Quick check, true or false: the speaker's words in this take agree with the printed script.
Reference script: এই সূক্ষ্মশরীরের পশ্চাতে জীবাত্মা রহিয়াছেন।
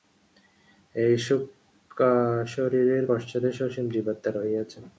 false